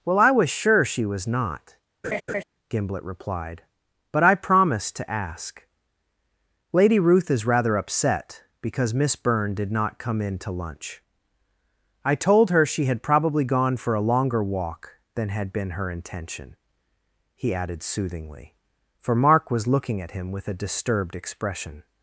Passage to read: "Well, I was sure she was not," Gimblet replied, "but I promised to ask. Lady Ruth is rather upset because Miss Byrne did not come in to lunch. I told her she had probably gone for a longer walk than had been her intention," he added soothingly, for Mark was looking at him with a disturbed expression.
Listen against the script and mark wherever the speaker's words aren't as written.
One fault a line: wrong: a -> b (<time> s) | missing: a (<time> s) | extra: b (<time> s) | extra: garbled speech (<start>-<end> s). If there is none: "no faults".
no faults